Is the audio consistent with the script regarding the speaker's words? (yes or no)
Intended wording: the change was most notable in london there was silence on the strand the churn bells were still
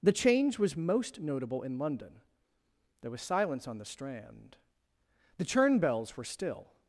yes